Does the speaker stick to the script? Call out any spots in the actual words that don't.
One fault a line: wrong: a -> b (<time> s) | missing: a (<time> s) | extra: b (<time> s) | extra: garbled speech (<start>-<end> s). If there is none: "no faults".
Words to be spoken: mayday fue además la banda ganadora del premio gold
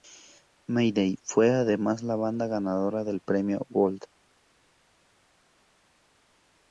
no faults